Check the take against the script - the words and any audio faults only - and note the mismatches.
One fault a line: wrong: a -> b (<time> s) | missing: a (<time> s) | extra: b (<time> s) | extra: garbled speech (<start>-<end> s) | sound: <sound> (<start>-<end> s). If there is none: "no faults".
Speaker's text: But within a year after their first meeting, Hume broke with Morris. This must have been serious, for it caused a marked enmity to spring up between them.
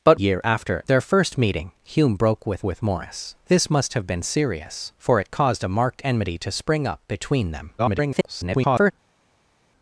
missing: within a (0.2 s)
extra: with (2.6 s)
extra: garbled speech (7.8-8.9 s)